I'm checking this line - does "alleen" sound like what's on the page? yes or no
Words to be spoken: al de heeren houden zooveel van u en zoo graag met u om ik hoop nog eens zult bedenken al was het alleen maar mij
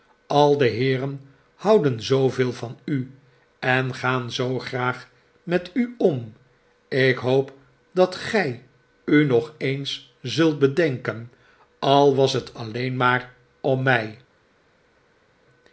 yes